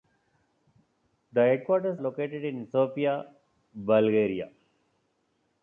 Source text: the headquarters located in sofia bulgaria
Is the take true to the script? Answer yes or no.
yes